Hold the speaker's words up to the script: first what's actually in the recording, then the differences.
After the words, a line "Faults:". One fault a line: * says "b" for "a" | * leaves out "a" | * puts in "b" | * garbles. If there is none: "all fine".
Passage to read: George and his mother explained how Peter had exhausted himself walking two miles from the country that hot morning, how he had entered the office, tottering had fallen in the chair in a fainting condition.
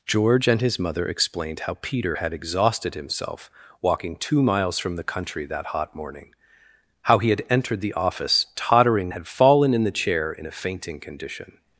George and his mother explained how Peter had exhausted himself walking two miles from the country that hot morning, how he had entered the office, tottering had fallen in the chair in a fainting condition.
Faults:
all fine